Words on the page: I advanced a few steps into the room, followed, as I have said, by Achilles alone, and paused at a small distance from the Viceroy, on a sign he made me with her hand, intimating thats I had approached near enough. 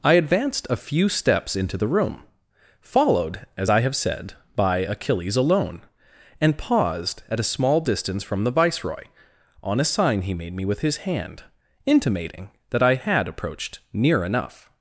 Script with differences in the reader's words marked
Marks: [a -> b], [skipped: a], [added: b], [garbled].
I advanced a few steps into the room, followed, as I have said, by Achilles alone, and paused at a small distance from the Viceroy, on a sign he made me with [her -> his] hand, intimating [thats -> that] I had approached near enough.